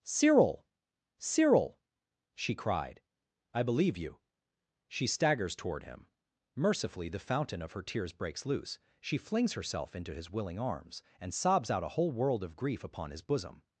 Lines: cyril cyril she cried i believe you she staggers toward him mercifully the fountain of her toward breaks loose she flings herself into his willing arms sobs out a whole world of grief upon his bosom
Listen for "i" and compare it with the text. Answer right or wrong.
right